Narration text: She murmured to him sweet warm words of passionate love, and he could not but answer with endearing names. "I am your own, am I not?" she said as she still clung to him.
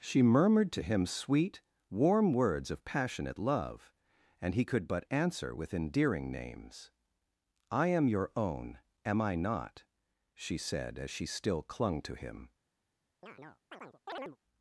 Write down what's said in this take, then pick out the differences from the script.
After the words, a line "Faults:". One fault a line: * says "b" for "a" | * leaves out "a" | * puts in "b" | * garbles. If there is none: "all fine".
She murmured to him sweet warm words of passionate love, and he could but answer with endearing names. "I am your own, am I not?" she said as she still clung to him.
Faults:
* leaves out "not"